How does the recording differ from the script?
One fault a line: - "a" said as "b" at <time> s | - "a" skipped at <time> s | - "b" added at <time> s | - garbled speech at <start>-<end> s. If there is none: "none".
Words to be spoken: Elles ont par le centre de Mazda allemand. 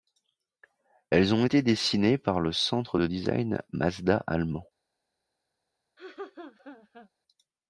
- "été dessinées" added at 1.4 s
- "design" added at 3.0 s